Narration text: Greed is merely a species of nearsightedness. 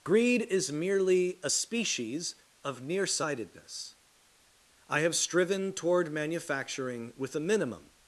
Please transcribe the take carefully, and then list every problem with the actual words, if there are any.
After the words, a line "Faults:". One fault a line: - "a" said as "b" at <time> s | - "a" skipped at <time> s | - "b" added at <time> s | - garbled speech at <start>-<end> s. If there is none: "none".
Greed is merely a species of nearsightedness. I have striven toward manufacturing with a minimum
Faults:
- "I have striven toward manufacturing with a minimum" added at 4.9 s